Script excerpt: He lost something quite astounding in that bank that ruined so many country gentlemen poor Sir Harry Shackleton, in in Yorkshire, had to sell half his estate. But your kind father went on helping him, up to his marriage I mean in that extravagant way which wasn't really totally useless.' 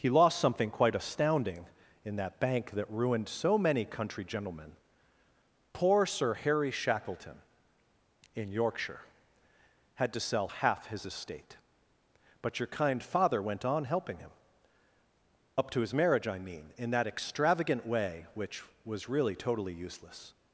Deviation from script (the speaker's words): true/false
true